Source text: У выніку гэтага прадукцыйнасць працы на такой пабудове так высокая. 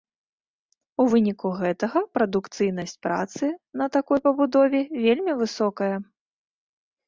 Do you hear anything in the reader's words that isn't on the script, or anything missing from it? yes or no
yes